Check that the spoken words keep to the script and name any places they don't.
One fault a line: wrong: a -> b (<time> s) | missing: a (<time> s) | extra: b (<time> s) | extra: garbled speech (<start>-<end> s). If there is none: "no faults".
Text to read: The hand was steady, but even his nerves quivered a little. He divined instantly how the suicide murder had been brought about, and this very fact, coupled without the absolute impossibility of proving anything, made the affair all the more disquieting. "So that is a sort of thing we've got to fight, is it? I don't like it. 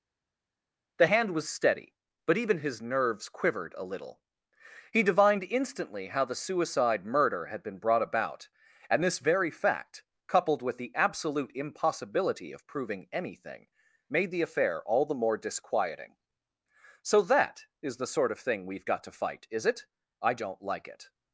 wrong: without -> with (10.6 s)
wrong: a -> the (18.0 s)